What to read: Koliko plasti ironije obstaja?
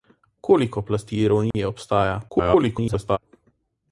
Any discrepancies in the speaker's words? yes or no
yes